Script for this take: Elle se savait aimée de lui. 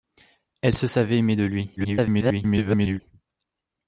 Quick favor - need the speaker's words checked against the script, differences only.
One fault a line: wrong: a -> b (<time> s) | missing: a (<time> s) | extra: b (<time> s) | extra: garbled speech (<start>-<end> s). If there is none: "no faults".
extra: garbled speech (1.8-3.0 s)